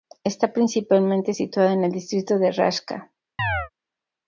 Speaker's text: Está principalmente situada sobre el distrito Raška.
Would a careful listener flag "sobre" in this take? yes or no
yes